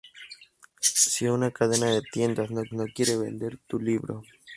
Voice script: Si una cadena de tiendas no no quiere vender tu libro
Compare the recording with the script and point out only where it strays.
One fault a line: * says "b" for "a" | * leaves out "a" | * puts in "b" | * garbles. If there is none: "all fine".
all fine